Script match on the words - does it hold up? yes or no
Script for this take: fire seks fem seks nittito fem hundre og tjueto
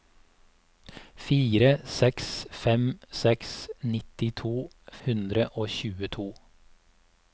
no